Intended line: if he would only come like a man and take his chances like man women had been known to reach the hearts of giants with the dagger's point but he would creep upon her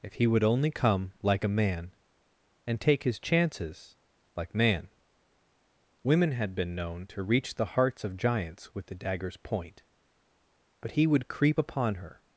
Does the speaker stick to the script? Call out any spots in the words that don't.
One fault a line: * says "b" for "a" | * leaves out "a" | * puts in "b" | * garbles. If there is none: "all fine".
all fine